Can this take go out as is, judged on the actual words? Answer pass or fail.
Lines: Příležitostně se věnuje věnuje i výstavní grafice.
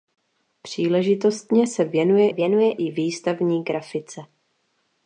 pass